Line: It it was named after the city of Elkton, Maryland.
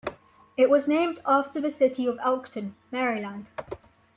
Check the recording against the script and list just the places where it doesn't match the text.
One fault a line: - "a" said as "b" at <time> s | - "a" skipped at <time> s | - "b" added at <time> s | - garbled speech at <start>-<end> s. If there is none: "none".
- "it" skipped at 0.7 s